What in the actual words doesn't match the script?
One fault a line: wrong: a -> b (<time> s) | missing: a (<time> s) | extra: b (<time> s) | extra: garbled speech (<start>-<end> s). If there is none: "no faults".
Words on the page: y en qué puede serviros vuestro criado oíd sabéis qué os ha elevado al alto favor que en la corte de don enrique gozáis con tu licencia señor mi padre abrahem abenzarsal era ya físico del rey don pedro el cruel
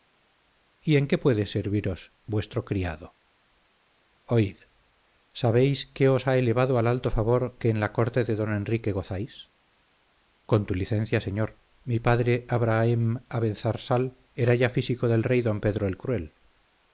no faults